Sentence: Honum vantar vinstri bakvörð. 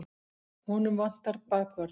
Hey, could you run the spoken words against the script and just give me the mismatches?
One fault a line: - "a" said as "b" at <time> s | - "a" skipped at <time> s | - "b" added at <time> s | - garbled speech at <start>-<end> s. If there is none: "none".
- "vinstri" skipped at 1.4 s